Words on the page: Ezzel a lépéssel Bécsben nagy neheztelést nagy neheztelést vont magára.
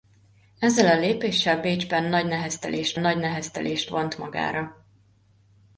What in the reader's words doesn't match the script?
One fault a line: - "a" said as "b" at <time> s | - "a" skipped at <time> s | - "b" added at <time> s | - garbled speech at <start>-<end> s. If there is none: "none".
none